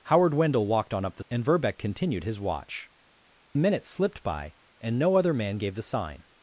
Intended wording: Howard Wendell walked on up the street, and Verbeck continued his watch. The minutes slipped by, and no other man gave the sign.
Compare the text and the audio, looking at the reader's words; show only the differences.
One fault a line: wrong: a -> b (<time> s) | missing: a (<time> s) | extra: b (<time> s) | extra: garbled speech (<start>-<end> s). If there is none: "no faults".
missing: street (1.2 s)
missing: The (2.9 s)